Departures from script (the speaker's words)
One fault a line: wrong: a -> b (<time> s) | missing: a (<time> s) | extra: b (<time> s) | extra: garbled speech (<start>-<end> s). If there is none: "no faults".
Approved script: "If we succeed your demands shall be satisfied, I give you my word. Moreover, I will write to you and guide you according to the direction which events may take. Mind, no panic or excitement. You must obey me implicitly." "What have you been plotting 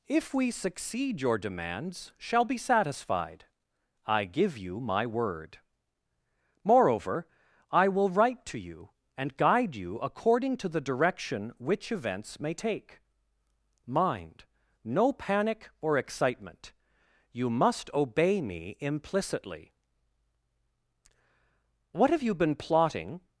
no faults